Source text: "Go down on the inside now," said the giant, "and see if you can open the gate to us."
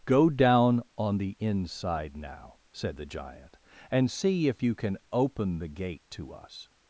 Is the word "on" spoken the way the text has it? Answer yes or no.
yes